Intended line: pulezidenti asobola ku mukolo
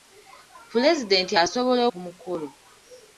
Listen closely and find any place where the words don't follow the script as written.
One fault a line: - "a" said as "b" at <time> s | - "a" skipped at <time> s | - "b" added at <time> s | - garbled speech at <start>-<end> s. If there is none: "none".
none